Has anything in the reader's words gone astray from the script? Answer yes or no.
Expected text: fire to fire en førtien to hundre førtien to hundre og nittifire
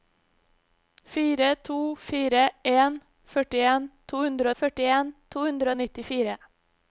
no